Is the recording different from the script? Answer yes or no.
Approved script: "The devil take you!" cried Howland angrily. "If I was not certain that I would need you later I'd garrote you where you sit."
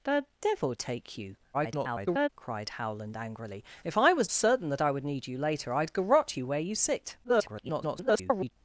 yes